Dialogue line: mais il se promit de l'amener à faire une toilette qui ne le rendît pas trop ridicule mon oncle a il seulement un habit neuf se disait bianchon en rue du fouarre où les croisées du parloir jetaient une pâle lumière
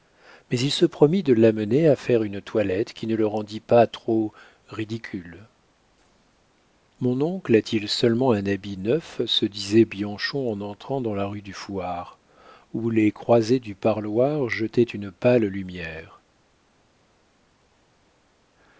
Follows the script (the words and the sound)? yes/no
no